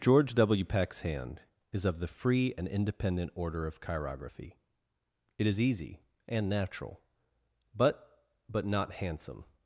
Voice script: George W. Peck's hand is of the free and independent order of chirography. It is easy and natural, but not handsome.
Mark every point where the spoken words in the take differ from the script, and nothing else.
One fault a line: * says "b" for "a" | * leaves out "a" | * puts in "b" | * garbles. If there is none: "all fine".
* puts in "but"